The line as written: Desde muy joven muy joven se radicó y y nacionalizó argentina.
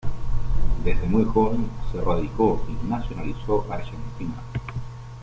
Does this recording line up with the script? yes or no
no